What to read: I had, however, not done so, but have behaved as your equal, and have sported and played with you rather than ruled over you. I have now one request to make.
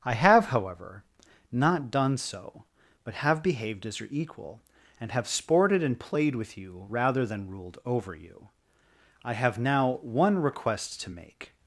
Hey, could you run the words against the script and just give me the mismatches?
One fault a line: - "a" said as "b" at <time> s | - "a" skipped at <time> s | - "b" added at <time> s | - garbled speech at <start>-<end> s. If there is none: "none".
- "had" said as "have" at 0.1 s